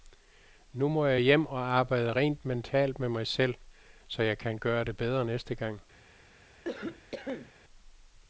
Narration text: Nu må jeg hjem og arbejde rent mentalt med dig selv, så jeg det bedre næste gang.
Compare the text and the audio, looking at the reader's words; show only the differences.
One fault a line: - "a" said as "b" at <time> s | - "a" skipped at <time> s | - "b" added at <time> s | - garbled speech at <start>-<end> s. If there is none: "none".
- "dig" said as "mig" at 3.1 s
- "kan gøre" added at 4.4 s